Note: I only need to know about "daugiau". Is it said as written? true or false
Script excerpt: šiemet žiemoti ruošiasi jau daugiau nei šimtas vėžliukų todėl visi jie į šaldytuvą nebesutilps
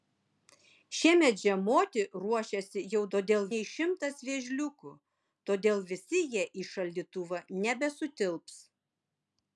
false